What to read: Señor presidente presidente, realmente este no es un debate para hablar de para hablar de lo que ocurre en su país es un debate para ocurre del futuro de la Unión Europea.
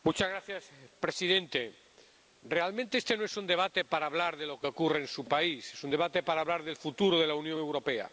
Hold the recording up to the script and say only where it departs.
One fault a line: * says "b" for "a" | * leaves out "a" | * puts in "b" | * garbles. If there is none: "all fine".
* leaves out "presidente"
* leaves out "para hablar de"
* says "hablar" for "ocurre"